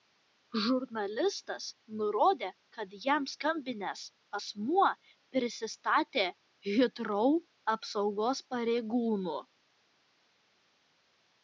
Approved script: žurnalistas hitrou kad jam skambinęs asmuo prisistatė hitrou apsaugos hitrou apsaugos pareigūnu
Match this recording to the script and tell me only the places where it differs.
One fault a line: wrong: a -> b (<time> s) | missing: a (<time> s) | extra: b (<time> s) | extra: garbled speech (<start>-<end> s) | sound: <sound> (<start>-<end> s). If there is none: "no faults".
wrong: hitrou -> nurodė (2.0 s)
missing: hitrou apsaugos (8.5 s)